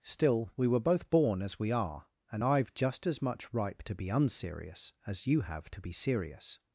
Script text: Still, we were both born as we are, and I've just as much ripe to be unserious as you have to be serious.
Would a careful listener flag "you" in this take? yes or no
no